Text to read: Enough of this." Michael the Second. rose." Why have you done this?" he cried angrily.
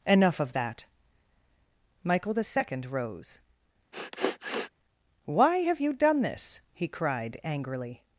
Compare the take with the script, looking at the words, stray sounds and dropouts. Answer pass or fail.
fail